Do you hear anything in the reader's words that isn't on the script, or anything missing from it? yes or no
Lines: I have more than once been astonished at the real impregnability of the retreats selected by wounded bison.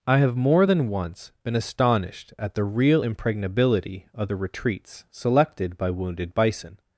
no